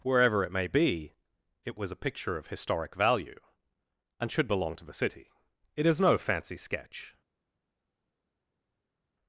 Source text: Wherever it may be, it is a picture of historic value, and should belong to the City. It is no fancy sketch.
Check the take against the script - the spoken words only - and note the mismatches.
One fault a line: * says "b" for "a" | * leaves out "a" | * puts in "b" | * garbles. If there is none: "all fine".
* says "was" for "is"